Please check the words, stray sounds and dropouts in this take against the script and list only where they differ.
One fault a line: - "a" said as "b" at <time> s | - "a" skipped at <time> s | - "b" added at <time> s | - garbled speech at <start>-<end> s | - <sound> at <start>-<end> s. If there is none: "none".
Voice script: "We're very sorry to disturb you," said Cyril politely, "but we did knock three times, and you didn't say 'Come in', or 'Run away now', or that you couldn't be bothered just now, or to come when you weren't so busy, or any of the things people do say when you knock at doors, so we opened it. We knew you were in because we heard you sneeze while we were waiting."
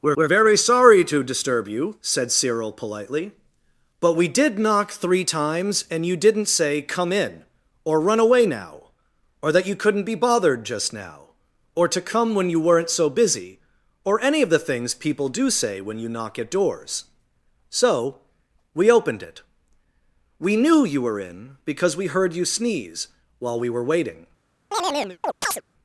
- "we're" added at 0.2 s
- chirp at 24.7-25.6 s